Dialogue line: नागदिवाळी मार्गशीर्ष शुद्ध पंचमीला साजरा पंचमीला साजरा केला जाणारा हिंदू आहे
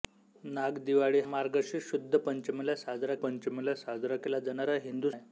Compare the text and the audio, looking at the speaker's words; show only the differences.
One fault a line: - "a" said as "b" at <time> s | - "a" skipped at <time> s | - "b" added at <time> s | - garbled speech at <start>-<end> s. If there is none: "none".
none